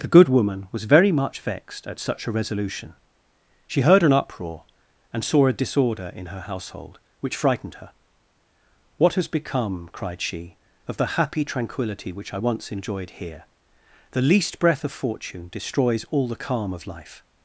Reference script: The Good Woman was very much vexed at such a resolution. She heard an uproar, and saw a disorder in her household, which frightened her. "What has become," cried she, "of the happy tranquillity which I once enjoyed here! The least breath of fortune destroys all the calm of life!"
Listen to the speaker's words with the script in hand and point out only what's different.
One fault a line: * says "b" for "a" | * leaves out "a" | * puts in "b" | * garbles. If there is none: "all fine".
all fine